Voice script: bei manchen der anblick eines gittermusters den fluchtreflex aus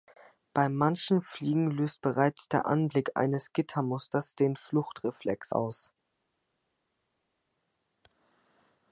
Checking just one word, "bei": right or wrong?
right